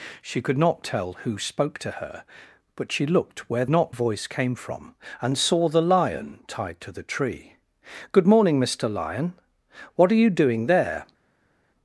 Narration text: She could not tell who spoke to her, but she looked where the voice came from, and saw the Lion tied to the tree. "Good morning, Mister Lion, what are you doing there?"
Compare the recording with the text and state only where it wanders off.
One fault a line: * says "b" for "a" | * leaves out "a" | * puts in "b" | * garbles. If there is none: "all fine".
* says "not" for "the"